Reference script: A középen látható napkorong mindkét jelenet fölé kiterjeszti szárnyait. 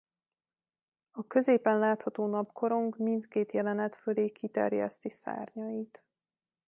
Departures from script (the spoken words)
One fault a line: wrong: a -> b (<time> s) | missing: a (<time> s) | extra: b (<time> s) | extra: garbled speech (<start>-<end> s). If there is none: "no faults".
no faults